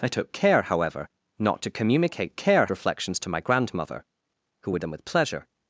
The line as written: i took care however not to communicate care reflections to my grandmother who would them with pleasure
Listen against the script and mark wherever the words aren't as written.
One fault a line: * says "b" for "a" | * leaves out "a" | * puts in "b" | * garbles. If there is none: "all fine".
all fine